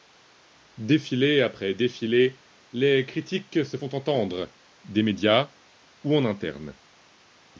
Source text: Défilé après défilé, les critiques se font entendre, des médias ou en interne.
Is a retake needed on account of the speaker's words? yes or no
no